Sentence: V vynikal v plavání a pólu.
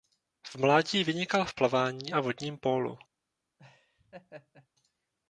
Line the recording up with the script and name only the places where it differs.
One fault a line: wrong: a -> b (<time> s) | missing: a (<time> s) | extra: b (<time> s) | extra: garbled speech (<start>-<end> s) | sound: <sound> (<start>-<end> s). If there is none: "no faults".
extra: mládí (0.6 s)
extra: vodním (2.2 s)
sound: laugh (3.6-4.7 s)